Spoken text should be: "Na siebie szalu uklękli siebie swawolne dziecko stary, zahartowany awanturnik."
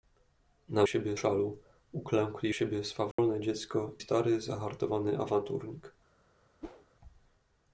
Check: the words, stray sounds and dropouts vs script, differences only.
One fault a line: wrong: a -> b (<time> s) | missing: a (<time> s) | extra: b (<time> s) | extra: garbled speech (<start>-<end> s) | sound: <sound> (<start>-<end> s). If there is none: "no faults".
sound: dropout (3.1-3.2 s)
sound: whoosh (6.6-6.9 s)